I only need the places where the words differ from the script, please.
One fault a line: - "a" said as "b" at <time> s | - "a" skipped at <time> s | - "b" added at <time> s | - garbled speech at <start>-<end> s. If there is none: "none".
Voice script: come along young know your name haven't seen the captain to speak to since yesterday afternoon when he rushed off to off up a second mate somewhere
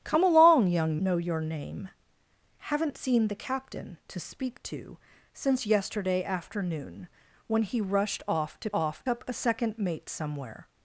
none